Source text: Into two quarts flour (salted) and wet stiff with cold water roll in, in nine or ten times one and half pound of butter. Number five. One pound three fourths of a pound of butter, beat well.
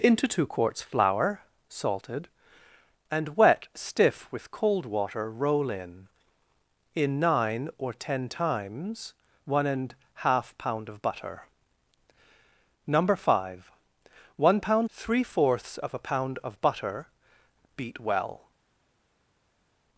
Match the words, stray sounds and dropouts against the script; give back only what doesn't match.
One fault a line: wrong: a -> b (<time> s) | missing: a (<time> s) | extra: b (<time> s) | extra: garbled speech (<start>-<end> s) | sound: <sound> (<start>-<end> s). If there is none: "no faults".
no faults